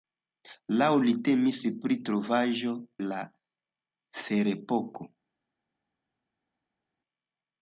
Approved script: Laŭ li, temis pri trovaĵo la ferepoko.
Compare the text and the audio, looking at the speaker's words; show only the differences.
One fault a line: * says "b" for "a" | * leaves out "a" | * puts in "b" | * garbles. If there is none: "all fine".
all fine